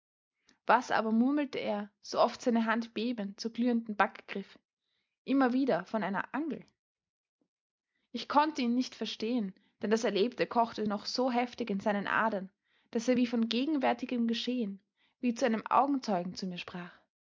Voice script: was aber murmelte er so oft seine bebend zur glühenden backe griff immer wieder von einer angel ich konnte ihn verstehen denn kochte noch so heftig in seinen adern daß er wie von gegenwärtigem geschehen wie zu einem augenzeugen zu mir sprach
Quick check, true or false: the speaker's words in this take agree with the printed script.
false